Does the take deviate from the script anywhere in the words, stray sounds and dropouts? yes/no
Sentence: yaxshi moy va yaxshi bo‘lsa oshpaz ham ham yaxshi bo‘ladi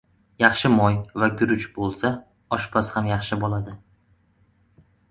yes